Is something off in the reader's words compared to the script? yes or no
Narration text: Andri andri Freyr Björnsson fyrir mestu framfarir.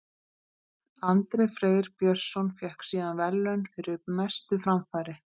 yes